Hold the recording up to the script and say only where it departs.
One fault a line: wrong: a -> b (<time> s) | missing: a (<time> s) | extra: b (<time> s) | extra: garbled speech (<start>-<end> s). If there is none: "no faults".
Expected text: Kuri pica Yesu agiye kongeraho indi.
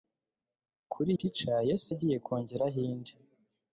no faults